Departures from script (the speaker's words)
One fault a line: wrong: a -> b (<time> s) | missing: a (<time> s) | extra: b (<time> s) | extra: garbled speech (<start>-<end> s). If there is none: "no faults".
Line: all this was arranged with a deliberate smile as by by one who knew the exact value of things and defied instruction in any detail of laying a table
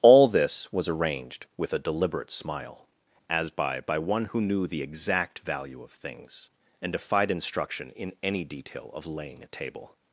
no faults